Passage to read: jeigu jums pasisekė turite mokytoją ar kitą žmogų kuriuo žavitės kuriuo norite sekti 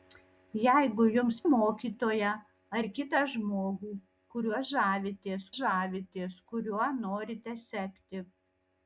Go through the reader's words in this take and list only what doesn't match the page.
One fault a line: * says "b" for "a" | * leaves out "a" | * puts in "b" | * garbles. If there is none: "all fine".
* leaves out "pasisekė turite"
* puts in "žavitės"